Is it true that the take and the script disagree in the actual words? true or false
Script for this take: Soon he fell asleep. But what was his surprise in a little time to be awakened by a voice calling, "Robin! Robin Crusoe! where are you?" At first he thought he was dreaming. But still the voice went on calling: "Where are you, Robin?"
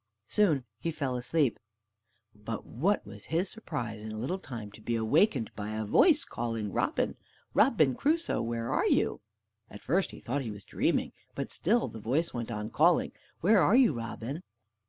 false